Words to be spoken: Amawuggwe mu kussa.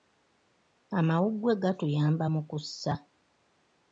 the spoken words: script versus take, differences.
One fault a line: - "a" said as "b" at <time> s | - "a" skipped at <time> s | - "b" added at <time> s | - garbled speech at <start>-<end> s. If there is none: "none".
- "gatuyamba" added at 1.6 s